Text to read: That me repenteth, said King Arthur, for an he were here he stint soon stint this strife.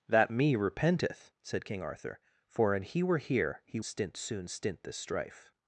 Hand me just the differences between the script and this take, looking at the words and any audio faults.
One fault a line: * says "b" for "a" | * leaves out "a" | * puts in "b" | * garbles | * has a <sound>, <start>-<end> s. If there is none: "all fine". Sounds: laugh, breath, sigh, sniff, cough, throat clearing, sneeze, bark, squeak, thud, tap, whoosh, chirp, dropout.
all fine